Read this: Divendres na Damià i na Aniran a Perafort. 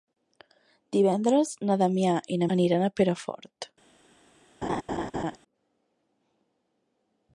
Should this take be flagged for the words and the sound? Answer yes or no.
yes